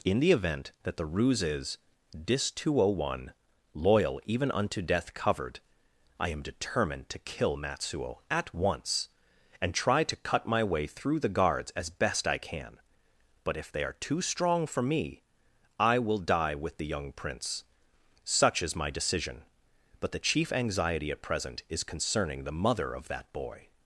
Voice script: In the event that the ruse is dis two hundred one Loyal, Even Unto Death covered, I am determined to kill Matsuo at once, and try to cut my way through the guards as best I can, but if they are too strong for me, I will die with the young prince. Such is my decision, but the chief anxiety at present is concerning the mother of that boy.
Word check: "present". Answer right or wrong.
right